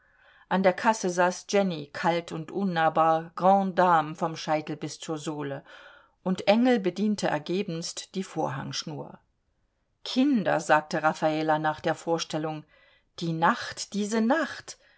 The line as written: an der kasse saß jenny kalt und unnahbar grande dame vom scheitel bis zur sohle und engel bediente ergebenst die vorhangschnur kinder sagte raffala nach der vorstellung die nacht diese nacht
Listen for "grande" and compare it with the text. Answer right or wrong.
right